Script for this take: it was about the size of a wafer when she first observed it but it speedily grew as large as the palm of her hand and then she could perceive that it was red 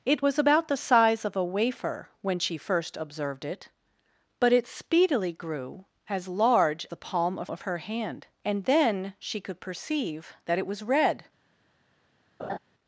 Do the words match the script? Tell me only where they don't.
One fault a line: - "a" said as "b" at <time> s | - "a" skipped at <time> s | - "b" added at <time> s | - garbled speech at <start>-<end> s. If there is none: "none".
- "as" skipped at 6.9 s
- "of" added at 7.5 s